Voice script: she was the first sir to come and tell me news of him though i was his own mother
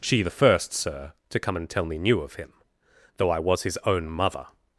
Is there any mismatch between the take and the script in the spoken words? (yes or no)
yes